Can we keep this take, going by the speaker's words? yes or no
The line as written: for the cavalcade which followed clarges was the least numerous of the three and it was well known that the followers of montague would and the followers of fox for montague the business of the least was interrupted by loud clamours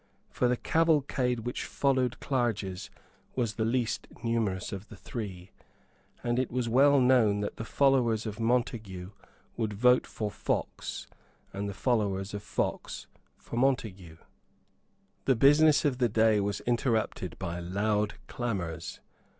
no